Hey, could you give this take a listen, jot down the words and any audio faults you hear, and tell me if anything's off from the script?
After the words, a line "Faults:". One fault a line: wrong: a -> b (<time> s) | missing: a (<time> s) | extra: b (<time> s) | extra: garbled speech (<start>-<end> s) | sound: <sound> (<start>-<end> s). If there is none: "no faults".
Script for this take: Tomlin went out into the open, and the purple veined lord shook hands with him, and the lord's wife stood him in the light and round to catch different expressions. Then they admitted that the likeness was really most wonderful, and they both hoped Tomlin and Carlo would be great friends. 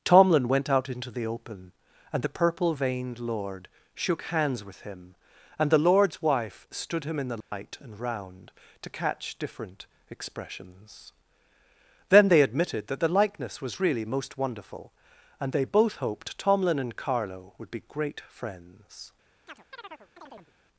Tomlin went out into the open, and the purple veined lord shook hands with him, and the lord's wife stood him in the light and round to catch different expressions. Then they admitted that the likeness was really most wonderful, and they both hoped Tomlin and Carlo would be great friends.
Faults:
sound: dropout (7.4-7.5 s)
sound: chirp (19.5-20.5 s)